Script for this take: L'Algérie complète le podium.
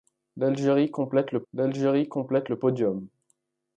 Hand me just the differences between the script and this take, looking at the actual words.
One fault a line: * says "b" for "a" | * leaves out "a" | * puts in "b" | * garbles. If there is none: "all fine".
* puts in "l'algérie complète le"